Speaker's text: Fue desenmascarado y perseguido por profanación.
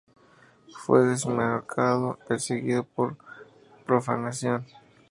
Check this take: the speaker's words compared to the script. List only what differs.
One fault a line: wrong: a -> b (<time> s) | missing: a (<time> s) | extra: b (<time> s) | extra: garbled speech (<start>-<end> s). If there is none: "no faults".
missing: y (2.2 s)